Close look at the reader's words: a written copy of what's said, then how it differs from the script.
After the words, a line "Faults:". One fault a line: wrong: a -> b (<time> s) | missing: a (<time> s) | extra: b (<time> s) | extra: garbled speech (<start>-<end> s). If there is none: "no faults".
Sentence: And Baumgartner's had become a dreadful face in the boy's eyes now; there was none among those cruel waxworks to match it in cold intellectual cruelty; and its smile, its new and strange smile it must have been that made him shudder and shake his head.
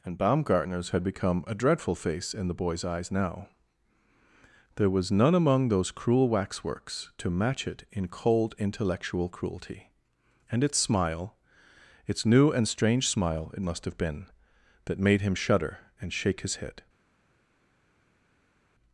And Baumgartner's had become a dreadful face in the boy's eyes now; there was none among those cruel waxworks to match it in cold intellectual cruelty; and its smile, its new and strange smile it must have been that made him shudder and shake his head.
Faults:
no faults